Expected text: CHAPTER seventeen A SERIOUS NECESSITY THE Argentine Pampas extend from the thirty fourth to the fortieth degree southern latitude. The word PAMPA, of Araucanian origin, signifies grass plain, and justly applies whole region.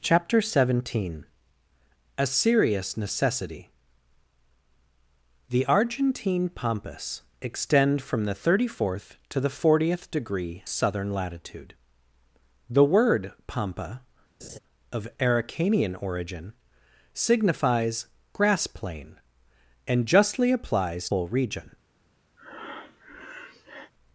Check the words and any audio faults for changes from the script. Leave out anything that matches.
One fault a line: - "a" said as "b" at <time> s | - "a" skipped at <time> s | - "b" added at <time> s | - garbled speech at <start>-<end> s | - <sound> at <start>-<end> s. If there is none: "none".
- laugh at 14.4-14.6 s
- breath at 22.4-23.9 s